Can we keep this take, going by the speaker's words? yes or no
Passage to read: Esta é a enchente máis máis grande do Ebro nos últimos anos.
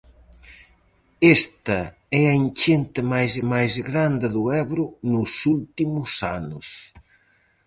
yes